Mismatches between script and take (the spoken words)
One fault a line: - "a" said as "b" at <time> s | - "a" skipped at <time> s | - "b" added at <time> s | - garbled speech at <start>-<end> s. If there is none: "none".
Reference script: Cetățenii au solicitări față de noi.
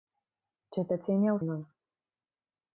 - "solicitări față de" skipped at 1.4 s